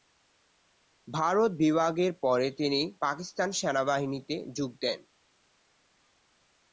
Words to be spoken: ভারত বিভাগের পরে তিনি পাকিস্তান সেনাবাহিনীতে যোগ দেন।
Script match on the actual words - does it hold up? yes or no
yes